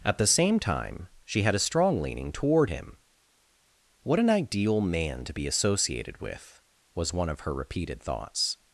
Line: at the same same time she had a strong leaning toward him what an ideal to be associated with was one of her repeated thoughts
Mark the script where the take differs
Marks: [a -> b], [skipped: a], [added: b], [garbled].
at the same [skipped: same] time she had a strong leaning toward him what an ideal [added: man] to be associated with was one of her repeated thoughts